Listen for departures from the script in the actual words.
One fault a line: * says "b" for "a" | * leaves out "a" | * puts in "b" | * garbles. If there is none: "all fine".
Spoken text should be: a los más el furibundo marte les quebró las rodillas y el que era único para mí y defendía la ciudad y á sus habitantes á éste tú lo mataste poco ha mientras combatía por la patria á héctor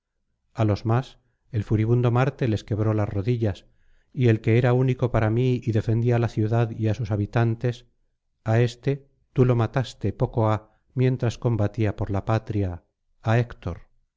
all fine